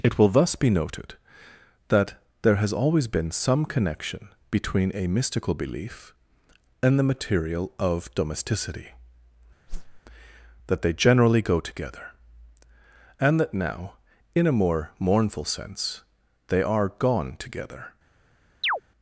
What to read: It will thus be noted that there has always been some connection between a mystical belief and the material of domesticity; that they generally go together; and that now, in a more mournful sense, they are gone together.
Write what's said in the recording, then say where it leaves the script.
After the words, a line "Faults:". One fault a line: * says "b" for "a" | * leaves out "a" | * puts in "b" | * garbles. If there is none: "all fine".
It will thus be noted that there has always been some connection between a mystical belief and the material of domesticity; that they generally go together; and that now, in a more mournful sense, they are gone together.
Faults:
all fine